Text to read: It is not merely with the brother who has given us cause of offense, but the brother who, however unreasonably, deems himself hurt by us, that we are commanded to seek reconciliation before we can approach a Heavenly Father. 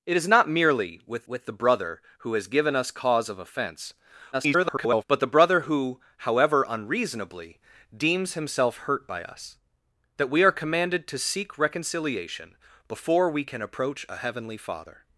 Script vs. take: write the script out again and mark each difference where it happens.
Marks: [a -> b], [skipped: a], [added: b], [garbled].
It is not merely with [added: with] the brother who has given us cause of offense, [garbled] but the brother who, however unreasonably, deems himself hurt by us, that we are commanded to seek reconciliation before we can approach a Heavenly Father.